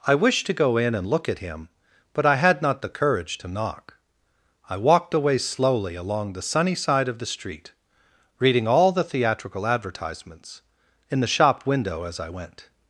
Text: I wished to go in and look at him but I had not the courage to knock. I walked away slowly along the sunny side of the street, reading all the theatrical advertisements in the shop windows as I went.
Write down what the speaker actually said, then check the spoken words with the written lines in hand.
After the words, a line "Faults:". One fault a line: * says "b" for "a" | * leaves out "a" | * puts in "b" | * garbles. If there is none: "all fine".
I wished to go in and look at him but I had not the courage to knock. I walked away slowly along the sunny side of the street, reading all the theatrical advertisements in the shop window as I went.
Faults:
* says "window" for "windows"